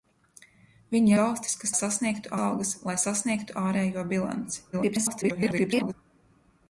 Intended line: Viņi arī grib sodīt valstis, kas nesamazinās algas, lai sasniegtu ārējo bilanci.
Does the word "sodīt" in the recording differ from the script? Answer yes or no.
yes